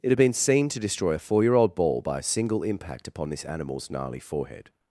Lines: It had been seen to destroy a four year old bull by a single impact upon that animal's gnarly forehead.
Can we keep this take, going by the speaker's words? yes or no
no